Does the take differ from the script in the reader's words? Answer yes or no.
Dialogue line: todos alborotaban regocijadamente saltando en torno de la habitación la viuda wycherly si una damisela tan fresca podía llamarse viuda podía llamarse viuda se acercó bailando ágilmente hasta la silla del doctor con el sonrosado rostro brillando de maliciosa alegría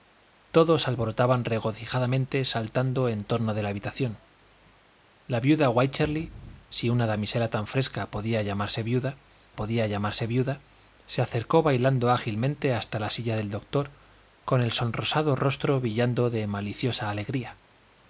no